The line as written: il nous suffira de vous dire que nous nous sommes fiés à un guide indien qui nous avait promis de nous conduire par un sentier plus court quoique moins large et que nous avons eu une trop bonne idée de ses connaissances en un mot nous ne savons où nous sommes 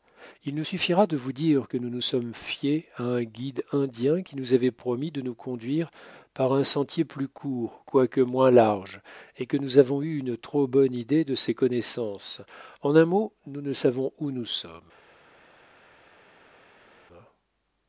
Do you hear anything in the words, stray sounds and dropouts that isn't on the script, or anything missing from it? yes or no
no